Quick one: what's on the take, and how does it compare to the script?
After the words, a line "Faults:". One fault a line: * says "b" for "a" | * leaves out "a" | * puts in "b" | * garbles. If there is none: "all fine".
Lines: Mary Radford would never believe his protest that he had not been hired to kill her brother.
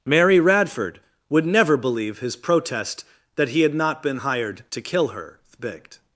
Mary Radford would never believe his protest that he had not been hired to kill her thbigt.
Faults:
* says "thbigt" for "brother"